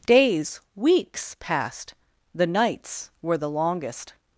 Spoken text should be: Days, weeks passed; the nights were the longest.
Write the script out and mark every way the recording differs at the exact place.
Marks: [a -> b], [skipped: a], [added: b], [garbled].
Days, weeks passed; the nights were the longest.